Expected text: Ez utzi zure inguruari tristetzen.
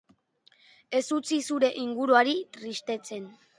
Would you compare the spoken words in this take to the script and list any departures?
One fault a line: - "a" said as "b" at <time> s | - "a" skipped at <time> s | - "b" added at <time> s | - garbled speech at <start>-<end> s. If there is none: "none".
none